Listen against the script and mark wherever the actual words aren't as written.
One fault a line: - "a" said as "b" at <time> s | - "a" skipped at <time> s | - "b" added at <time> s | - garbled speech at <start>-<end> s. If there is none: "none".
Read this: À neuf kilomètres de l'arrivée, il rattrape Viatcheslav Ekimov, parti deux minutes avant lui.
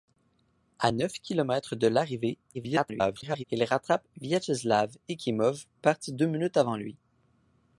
- garbled speech at 2.5-3.4 s